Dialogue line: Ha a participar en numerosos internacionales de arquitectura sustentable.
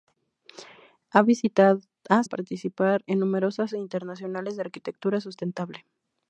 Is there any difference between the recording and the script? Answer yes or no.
no